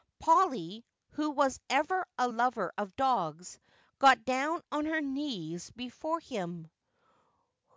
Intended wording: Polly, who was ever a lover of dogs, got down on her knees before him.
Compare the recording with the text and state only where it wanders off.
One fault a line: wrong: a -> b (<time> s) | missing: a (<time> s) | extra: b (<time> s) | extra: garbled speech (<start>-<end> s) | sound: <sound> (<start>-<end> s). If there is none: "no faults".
no faults